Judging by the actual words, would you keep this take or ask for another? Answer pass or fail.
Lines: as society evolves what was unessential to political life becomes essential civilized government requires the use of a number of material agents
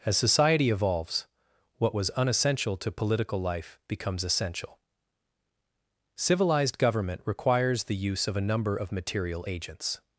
pass